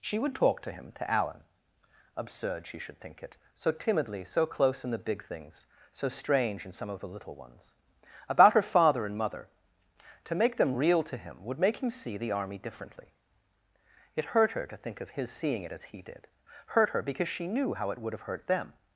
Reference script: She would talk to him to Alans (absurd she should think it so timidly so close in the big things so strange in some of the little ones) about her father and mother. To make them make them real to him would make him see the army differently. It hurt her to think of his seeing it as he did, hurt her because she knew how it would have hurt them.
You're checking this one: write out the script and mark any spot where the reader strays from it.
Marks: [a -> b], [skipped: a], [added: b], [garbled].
She would talk to him to [Alans -> Alan] (absurd she should think it so timidly so close in the big things so strange in some of the little ones) about her father and mother. To make them [skipped: make them] real to him would make him see the army differently. It hurt her to think of his seeing it as he did, hurt her because she knew how it would have hurt them.